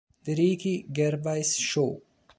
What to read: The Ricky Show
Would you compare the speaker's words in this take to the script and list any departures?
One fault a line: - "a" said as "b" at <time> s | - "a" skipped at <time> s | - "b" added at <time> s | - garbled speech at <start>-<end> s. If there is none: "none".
- "Gervais" added at 0.9 s